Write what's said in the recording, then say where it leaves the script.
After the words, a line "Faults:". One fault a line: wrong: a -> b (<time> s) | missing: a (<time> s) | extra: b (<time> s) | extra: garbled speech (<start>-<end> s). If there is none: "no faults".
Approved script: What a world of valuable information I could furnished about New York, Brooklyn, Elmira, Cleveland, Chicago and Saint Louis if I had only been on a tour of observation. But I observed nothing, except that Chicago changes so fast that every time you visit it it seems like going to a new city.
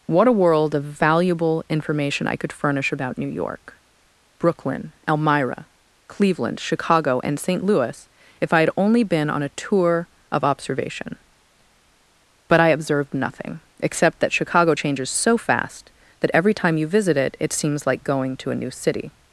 What a world of valuable information I could furnish about New York, Brooklyn, Elmira, Cleveland, Chicago and Saint Louis if I had only been on a tour of observation. But I observed nothing, except that Chicago changes so fast that every time you visit it it seems like going to a new city.
Faults:
wrong: furnished -> furnish (2.5 s)